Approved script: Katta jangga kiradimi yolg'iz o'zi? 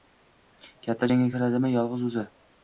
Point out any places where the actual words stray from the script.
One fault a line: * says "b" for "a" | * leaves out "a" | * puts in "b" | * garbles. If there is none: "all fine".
all fine